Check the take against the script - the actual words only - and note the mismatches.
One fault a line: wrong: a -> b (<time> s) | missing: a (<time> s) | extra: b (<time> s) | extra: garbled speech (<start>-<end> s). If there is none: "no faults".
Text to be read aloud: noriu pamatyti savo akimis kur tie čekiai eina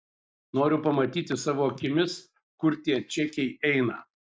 no faults